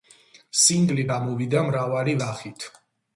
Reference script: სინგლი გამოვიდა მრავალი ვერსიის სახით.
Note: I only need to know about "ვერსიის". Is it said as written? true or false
false